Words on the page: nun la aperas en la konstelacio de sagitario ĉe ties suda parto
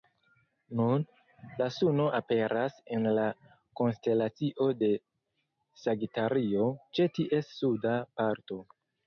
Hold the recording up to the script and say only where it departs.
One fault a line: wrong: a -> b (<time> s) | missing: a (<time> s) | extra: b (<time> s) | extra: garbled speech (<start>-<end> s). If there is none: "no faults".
extra: suno (1.8 s)